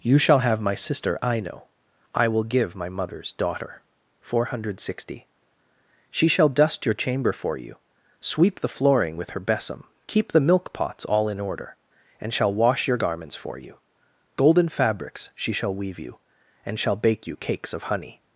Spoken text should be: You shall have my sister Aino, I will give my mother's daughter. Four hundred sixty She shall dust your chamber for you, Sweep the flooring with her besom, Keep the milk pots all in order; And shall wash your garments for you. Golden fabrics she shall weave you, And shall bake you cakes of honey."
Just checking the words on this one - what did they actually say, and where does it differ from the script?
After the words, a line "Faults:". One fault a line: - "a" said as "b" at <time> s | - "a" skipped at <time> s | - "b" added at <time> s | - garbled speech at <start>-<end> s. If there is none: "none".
You shall have my sister Aino, I will give my mother's daughter. Four hundred sixty She shall dust your chamber for you, Sweep the flooring with her besom, Keep the milk pots all in order; And shall wash your garments for you. Golden fabrics she shall weave you, And shall bake you cakes of honey."
Faults:
none